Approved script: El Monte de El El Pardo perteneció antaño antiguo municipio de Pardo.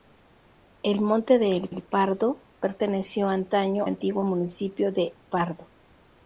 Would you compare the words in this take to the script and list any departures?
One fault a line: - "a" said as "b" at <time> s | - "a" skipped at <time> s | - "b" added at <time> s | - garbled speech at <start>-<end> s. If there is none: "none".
none